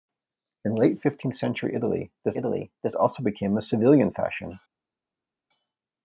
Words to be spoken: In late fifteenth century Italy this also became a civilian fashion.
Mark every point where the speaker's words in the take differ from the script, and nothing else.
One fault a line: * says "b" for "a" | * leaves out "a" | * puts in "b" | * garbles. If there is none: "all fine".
* puts in "Italy this"